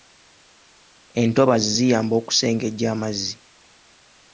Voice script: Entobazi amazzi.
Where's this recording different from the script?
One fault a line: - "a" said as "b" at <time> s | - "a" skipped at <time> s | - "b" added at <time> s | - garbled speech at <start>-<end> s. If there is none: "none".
- "ziyamba okusengejja" added at 1.7 s